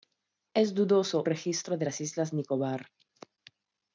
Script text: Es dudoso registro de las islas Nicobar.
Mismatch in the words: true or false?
false